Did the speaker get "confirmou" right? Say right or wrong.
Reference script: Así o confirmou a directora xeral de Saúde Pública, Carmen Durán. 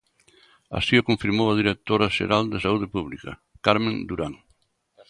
right